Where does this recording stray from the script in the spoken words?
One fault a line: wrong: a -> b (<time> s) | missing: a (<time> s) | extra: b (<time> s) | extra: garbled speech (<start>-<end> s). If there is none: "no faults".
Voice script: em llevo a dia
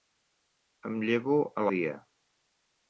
no faults